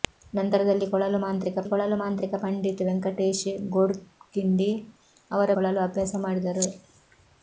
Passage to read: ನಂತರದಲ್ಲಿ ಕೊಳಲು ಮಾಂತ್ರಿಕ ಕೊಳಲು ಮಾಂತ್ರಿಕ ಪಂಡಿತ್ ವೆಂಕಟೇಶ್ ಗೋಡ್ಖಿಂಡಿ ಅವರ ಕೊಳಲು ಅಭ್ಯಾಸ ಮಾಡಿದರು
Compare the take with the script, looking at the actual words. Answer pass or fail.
pass